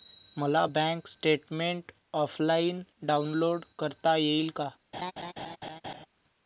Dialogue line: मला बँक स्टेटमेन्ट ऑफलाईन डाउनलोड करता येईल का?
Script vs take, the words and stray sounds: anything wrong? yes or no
yes